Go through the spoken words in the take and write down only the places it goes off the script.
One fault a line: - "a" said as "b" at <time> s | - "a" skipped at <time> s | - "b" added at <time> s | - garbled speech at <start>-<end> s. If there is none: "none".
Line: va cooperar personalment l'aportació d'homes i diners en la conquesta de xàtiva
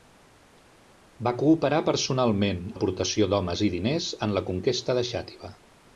none